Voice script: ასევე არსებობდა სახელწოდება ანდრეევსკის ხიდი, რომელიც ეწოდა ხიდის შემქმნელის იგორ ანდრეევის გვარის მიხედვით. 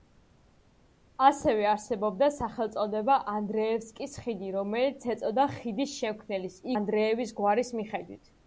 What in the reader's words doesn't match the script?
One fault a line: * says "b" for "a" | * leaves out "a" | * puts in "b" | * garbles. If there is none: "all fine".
* leaves out "იგორ"